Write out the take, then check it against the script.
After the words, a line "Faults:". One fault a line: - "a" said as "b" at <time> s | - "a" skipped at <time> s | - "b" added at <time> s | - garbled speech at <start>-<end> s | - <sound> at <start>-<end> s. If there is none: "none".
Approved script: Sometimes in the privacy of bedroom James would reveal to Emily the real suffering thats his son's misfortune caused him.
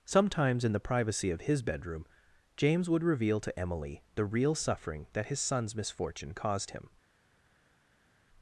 Sometimes in the privacy of his bedroom James would reveal to Emily the real suffering that his son's misfortune caused him.
Faults:
- "his" added at 1.4 s
- "thats" said as "that" at 5.1 s